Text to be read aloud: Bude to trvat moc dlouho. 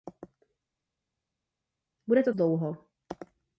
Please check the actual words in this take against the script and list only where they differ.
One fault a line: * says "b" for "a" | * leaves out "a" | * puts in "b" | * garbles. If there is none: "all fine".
* leaves out "trvat moc"